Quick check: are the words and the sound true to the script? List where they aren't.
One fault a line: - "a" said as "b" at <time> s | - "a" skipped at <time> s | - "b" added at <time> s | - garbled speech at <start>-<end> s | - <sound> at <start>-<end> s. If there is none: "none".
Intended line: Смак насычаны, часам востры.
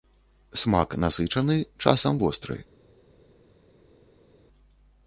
none